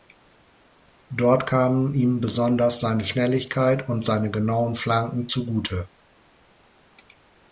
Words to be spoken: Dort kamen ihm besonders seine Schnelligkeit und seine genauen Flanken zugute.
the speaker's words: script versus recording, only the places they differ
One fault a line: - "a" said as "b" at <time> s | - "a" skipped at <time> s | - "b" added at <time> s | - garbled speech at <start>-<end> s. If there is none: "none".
none